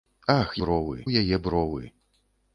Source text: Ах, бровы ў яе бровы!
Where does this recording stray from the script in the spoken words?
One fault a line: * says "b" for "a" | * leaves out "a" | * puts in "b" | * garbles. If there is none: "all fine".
all fine